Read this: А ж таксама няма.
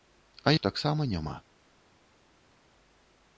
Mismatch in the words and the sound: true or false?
false